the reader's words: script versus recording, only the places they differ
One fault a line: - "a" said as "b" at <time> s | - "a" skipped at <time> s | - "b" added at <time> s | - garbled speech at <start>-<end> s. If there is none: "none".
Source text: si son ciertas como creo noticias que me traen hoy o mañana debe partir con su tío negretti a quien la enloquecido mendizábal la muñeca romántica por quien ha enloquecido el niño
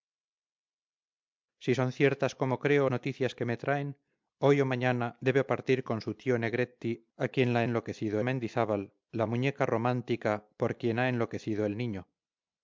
none